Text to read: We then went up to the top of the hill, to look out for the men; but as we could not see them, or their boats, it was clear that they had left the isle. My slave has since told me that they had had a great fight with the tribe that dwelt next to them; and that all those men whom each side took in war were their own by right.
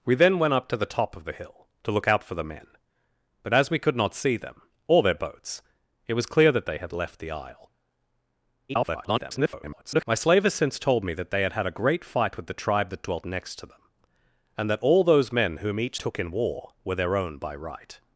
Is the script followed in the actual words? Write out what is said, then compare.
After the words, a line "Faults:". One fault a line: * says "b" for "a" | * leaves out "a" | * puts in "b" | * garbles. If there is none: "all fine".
We then went up to the top of the hill, to look out for the men; but as we could not see them, or their boats, it was clear that they had left the isle. [garbled] My slave has since told me that they had had a great fight with the tribe that dwelt next to them; and that all those men whom each took in war were their own by right.
Faults:
* garbles
* leaves out "side"